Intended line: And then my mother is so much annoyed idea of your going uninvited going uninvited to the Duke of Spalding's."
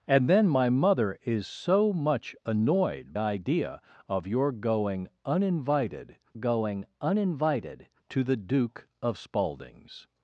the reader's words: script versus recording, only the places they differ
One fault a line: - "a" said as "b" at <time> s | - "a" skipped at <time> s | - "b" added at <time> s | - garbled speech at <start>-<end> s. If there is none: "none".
none